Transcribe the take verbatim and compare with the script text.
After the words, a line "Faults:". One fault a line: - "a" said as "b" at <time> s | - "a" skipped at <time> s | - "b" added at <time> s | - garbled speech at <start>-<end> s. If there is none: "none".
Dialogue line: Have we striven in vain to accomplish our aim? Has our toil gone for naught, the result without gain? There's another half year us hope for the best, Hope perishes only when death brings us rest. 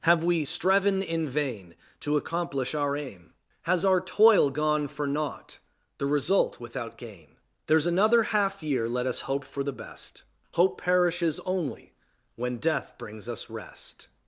Have we striven in vain to accomplish our aim? Has our toil gone for naught, the result without gain? There's another half year let us hope for the best, Hope perishes only when death brings us rest.
Faults:
- "let" added at 8.9 s